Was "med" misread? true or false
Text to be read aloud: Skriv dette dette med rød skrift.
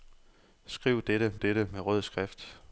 false